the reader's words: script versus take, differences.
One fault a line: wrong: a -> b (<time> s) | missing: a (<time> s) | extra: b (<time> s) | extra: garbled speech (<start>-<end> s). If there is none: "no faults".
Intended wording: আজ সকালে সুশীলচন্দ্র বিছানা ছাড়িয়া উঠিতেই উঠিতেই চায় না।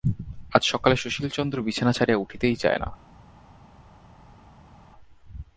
missing: উঠিতেই (2.6 s)